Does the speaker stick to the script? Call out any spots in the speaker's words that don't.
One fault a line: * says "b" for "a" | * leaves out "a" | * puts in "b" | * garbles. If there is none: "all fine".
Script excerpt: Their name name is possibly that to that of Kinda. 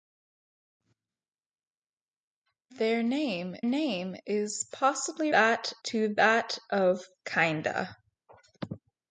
all fine